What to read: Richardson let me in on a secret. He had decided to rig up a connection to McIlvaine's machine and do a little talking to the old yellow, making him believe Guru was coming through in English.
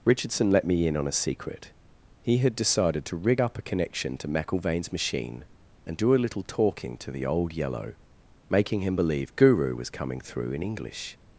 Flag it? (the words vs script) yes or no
no